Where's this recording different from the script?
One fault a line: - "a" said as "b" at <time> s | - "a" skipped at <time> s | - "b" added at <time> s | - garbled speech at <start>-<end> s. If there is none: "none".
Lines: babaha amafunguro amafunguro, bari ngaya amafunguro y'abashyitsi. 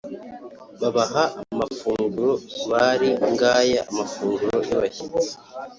- "amafunguro" skipped at 2.3 s